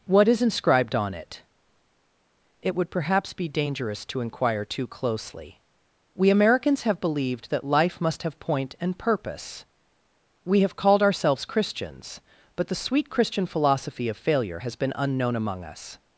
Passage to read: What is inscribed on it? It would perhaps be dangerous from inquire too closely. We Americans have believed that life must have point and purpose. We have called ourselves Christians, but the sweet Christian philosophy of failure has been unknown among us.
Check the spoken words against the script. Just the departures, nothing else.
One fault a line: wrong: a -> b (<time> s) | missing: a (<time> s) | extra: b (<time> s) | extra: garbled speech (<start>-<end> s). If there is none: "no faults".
wrong: from -> to (4.0 s)